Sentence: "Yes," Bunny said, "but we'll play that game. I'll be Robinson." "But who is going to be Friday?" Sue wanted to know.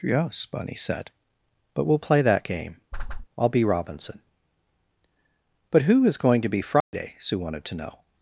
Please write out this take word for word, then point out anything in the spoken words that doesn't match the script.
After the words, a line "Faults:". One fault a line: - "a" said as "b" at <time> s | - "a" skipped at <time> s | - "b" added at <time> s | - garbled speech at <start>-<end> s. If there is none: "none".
"Yes," Bunny said, "but we'll play that game. I'll be Robinson." "But who is going to be Friday?" Sue wanted to know.
Faults:
none